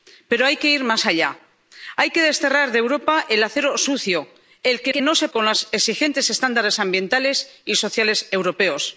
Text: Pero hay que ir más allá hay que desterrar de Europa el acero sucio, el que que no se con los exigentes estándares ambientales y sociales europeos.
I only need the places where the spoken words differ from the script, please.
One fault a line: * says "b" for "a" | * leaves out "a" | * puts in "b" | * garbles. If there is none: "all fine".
all fine